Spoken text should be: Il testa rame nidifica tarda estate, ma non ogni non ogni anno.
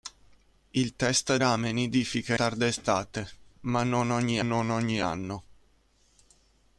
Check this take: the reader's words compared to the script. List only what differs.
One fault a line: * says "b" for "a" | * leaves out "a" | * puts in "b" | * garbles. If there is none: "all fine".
all fine